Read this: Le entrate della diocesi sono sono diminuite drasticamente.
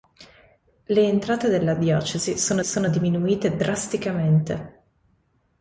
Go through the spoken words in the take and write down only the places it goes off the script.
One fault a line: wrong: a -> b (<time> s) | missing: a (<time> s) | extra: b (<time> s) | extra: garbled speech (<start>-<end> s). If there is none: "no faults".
no faults